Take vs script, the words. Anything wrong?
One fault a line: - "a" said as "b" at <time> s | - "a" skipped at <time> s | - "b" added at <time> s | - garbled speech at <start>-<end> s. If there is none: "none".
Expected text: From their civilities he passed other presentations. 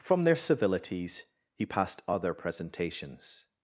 none